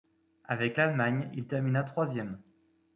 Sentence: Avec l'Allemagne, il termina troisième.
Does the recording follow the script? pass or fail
pass